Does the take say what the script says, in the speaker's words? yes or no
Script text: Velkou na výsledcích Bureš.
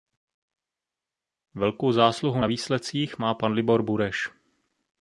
no